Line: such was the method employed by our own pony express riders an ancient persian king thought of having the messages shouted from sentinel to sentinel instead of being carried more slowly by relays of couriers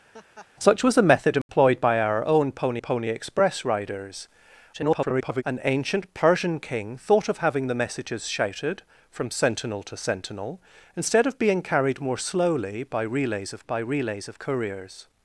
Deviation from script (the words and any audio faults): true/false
true